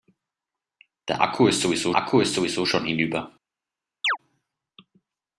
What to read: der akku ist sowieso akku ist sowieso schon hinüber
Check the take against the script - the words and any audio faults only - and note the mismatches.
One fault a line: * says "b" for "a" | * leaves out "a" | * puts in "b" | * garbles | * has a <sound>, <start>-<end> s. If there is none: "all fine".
* has a chirp, 4.0-4.2 s